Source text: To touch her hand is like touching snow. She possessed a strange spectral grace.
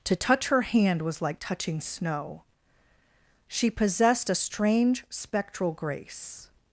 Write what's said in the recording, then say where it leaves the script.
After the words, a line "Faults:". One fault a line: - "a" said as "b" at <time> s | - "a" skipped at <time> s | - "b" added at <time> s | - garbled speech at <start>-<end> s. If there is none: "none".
To touch her hand was like touching snow. She possessed a strange spectral grace.
Faults:
- "is" said as "was" at 1.0 s